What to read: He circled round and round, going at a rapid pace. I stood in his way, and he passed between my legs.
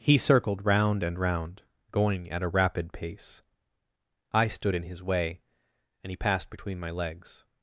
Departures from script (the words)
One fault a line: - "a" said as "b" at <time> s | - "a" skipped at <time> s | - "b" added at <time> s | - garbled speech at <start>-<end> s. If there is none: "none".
none